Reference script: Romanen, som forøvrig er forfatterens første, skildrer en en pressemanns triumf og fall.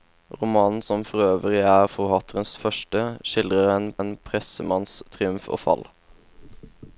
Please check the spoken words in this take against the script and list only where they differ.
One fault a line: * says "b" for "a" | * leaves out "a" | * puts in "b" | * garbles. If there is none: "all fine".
all fine